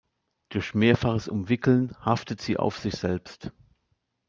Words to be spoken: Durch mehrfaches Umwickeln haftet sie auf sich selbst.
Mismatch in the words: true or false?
false